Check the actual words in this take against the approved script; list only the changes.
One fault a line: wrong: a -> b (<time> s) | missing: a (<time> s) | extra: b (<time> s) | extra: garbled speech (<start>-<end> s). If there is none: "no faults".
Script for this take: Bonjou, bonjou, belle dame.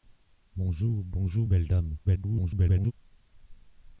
extra: garbled speech (2.0-2.9 s)